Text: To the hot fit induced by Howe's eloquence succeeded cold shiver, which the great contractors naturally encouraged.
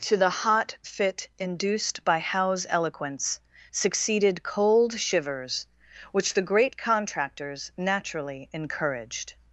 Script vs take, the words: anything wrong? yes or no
yes